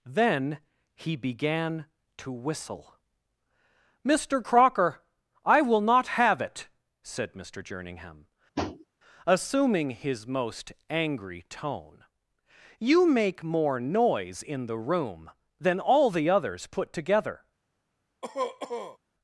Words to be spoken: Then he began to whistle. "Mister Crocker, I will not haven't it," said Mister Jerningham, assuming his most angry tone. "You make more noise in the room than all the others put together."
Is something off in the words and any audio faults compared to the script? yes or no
yes